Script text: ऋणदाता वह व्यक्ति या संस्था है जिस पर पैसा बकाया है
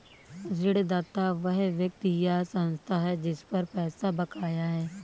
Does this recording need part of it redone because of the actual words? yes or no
no